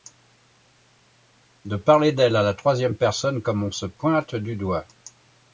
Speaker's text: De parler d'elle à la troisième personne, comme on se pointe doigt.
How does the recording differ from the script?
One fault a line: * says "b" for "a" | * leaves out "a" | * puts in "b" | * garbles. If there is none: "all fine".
* puts in "du"